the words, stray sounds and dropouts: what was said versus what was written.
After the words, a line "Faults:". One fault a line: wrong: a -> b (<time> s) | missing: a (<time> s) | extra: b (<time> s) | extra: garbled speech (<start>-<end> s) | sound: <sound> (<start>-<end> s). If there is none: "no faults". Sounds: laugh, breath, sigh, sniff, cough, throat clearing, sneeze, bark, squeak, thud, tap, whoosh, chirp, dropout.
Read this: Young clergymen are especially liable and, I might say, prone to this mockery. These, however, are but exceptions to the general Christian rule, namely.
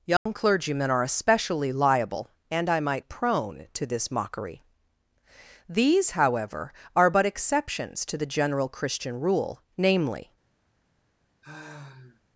Young clergymen are especially liable and, I might prone to this mockery. These, however, are but exceptions to the general Christian rule, namely.
Faults:
sound: dropout (0.2-0.3 s)
missing: say (3.0 s)
sound: sigh (11.4-12.2 s)